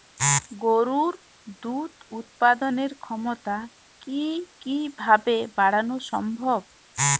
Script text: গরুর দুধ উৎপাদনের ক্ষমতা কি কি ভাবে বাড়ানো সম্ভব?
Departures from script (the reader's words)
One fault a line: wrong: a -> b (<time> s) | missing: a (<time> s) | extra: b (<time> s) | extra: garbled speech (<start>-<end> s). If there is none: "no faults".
no faults